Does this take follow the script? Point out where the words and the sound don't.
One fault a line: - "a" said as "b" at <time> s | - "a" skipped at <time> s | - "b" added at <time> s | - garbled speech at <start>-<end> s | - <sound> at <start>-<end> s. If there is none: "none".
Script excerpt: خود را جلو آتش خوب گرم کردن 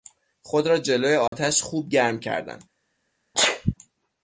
- dropout at 1.3-1.3 s
- sneeze at 3.3-3.7 s